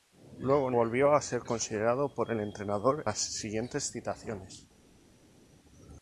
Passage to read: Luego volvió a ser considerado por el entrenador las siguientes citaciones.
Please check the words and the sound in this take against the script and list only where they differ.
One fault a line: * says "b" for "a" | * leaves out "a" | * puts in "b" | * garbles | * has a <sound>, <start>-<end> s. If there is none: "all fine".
all fine